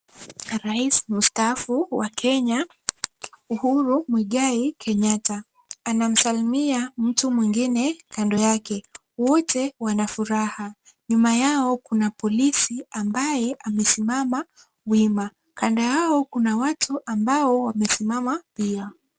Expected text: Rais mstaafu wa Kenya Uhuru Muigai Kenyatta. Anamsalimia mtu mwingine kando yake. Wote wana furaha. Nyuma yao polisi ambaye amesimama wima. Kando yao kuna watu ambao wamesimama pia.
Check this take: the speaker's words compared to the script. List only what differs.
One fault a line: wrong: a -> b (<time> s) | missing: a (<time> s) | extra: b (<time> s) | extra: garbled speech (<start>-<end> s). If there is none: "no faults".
extra: kuna (11.8 s)